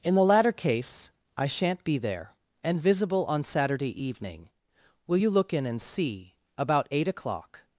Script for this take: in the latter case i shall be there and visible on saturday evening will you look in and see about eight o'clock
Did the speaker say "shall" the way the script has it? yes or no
no